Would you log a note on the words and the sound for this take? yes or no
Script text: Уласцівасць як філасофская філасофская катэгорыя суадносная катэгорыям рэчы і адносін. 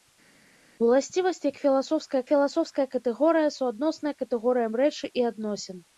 no